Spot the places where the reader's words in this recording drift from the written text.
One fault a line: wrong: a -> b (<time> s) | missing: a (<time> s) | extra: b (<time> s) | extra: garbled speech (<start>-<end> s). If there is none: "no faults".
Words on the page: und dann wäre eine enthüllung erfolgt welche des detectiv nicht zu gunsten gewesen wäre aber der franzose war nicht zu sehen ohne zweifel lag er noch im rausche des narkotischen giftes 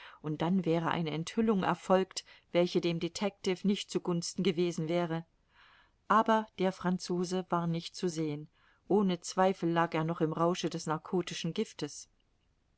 wrong: des -> dem (2.8 s)